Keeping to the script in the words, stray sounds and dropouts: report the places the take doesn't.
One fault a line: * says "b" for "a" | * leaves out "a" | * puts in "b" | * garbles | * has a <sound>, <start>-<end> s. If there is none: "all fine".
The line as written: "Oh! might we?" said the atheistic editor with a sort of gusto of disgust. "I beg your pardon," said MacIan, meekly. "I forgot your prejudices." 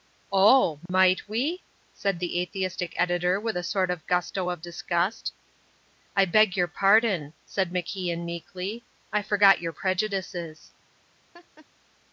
* has a dropout, 0.9-0.9 s
* has a laugh, 11.3-11.7 s